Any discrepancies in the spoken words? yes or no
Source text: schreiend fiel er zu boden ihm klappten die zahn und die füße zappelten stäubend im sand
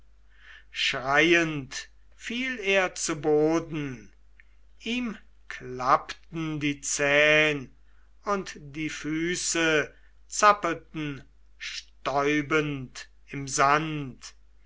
no